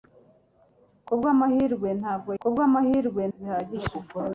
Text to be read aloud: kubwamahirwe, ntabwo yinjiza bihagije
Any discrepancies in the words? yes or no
yes